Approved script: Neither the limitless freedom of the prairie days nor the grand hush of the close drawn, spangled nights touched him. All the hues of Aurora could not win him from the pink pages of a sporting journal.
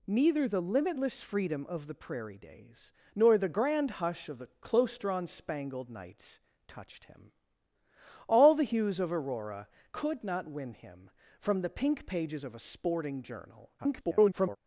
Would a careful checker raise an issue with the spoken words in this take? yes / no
yes